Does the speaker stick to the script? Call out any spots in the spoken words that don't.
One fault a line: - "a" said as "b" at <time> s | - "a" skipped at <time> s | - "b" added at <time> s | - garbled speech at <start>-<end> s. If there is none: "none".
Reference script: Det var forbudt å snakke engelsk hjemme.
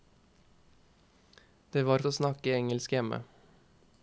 - "forbudt" skipped at 2.0 s